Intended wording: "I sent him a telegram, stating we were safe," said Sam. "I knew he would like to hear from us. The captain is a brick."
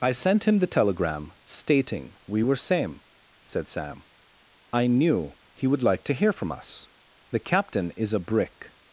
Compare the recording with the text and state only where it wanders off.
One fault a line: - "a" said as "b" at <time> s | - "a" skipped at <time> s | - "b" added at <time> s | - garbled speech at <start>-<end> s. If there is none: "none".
- "a" said as "the" at 0.6 s
- "safe" said as "same" at 2.6 s